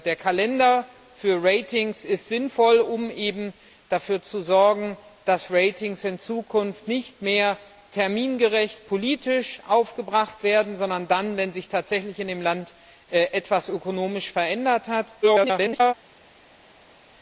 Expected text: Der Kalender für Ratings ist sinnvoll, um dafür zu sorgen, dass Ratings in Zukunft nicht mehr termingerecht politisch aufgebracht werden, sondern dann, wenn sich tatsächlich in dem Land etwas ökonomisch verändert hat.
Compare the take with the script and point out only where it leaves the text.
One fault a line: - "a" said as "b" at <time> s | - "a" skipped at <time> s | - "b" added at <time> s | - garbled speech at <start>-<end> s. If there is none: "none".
- garbled speech at 15.2-15.9 s